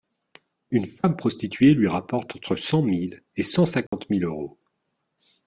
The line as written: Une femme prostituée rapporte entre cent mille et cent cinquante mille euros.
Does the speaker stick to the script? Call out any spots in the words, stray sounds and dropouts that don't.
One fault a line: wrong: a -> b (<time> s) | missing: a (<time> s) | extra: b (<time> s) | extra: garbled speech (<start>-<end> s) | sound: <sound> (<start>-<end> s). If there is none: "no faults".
extra: lui (1.8 s)
sound: dropout (3.9-3.9 s)